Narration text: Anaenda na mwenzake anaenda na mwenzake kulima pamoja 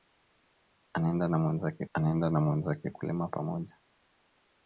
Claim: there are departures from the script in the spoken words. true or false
false